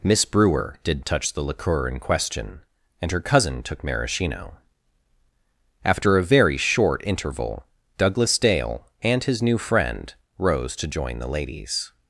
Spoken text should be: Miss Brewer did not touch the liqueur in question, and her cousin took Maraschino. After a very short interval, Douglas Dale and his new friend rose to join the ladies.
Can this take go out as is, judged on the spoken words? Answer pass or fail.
fail